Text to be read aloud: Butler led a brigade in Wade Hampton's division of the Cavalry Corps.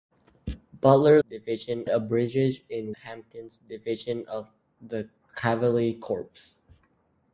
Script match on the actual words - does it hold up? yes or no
no